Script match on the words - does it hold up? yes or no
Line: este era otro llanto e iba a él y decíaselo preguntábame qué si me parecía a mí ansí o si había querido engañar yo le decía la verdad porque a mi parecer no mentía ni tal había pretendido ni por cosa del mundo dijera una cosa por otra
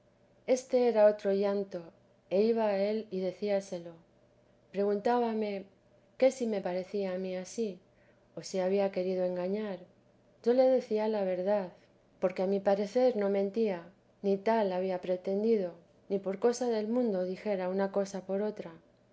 yes